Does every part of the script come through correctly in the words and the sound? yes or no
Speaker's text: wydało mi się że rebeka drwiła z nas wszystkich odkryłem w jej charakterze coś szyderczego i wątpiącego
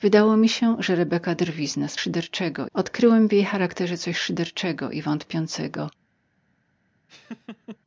no